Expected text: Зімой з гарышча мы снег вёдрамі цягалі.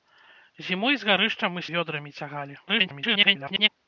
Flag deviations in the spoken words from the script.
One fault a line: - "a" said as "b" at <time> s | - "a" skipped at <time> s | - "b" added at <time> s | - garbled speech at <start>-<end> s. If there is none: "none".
- "снег" skipped at 1.6 s
- garbled speech at 2.7-3.7 s